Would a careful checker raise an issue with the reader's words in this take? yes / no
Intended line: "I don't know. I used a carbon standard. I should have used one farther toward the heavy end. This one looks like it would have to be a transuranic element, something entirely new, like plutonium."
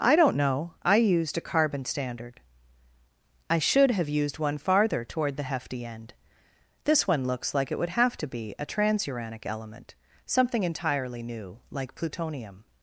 yes